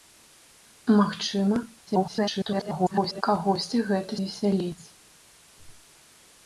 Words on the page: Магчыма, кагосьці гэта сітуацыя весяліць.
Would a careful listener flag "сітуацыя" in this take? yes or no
yes